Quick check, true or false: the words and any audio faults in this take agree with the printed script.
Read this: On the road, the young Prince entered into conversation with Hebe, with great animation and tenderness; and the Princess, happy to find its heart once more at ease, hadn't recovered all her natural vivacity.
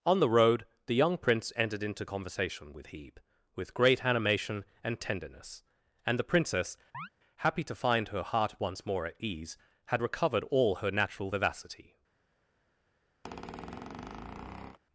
false